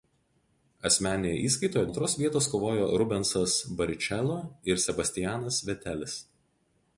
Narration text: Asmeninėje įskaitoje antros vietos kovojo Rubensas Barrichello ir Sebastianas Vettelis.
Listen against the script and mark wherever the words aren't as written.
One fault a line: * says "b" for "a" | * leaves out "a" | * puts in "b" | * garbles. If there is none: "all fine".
all fine